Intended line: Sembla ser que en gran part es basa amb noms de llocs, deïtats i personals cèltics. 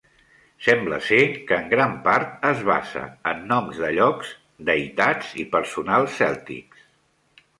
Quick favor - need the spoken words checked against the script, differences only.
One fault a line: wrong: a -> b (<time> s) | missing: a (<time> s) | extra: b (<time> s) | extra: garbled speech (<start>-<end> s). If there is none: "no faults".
wrong: amb -> en (3.3 s)